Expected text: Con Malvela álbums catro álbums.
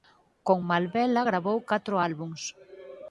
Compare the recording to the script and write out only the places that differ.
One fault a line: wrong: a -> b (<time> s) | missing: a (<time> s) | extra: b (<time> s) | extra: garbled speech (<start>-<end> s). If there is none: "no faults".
wrong: álbums -> gravou (1.3 s)